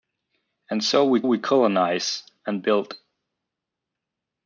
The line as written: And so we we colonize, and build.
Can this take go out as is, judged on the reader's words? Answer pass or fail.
pass